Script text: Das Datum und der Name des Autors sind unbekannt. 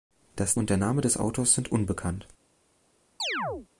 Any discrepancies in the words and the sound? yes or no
yes